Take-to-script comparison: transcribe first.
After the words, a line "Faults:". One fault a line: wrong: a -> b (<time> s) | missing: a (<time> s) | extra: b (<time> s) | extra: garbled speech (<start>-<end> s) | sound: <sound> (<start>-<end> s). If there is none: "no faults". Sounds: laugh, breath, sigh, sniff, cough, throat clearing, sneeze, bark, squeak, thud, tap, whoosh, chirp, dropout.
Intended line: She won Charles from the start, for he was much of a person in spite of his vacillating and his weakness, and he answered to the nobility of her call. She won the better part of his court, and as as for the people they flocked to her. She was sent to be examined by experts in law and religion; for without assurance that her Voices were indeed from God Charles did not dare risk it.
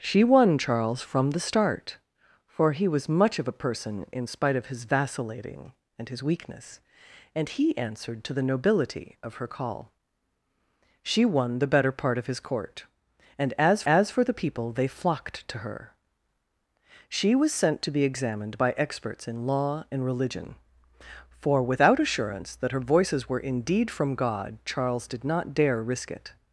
She won Charles from the start, for he was much of a person in spite of his vacillating and his weakness, and he answered to the nobility of her call. She won the better part of his court, and as as for the people they flocked to her. She was sent to be examined by experts in law and religion; for without assurance that her Voices were indeed from God Charles did not dare risk it.
Faults:
no faults